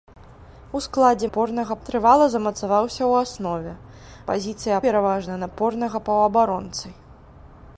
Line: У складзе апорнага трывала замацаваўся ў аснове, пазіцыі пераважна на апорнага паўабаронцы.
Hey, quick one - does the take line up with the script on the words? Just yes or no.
yes